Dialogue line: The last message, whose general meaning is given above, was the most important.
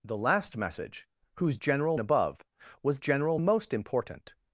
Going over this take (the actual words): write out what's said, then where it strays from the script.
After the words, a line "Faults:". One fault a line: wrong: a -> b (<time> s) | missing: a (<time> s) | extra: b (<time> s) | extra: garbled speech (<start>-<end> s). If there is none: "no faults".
The last message, whose general above, was general most important.
Faults:
missing: meaning is given (2.0 s)
wrong: the -> general (3.0 s)